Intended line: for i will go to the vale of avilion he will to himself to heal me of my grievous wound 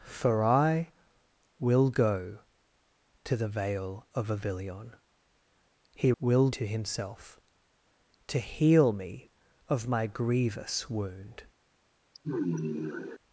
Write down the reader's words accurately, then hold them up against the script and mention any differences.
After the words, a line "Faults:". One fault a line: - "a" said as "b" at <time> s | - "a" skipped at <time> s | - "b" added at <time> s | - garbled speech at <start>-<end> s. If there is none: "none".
for i will go to the vale of avilion he will to himself to heal me of my grievous wound
Faults:
none